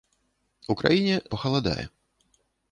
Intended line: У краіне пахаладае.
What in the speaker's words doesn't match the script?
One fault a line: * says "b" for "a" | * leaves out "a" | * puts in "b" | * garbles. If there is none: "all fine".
all fine